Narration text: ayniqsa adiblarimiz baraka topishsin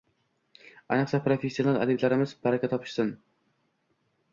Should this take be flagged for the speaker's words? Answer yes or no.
yes